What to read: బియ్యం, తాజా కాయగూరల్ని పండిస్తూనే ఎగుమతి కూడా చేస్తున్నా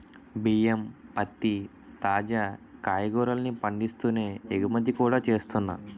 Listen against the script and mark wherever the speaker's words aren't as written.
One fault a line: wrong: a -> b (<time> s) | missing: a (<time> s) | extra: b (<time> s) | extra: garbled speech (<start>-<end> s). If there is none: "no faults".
extra: పత్తి (1.2 s)